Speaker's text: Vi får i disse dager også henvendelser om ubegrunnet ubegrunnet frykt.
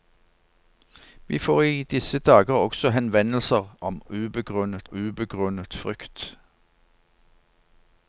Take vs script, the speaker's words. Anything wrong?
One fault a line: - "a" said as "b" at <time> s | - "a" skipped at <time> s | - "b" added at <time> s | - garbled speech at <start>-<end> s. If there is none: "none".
none